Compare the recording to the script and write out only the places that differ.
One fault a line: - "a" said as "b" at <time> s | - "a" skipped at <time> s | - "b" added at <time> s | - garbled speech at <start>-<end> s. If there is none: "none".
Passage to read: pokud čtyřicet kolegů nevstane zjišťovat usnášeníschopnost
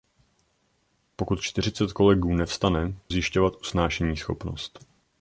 none